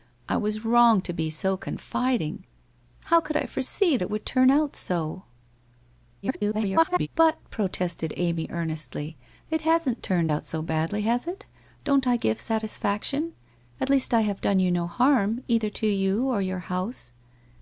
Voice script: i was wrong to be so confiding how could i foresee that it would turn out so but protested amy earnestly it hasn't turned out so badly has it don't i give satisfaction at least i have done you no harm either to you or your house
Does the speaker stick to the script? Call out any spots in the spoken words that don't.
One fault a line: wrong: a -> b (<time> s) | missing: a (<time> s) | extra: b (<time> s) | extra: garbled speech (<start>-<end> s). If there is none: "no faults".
missing: that (4.0 s)
extra: garbled speech (6.2-7.1 s)